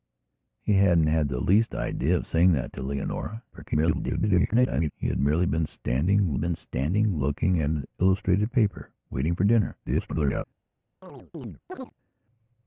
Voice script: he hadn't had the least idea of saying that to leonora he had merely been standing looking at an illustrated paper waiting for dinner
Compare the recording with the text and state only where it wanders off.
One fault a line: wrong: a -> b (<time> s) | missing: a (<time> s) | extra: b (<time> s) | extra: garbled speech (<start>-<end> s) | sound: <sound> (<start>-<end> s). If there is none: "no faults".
extra: garbled speech (3.5-4.9 s)
extra: been standing (6.3 s)
extra: garbled speech (9.9-10.4 s)
sound: chirp (11.0-11.9 s)